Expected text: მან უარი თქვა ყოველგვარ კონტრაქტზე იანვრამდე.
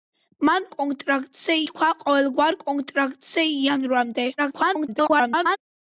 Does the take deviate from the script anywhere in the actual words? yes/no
yes